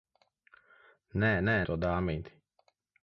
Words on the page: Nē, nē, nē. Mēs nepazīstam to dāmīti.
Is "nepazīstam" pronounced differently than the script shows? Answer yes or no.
yes